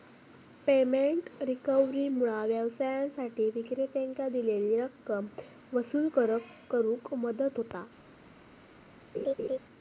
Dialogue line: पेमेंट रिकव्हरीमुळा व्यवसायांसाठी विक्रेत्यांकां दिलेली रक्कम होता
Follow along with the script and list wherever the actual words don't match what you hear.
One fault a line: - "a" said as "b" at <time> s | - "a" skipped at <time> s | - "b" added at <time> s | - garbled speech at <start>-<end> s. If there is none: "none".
- "वसूल करुक मदत" added at 5.7 s